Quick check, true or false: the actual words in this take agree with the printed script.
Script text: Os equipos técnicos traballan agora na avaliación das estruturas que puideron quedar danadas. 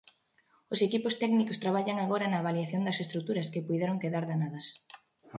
true